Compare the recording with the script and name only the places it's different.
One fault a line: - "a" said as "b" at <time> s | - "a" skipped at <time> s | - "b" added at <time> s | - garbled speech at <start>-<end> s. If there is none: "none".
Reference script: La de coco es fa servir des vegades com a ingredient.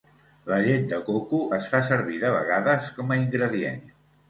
- "llet" added at 0.7 s
- "des" said as "de" at 2.3 s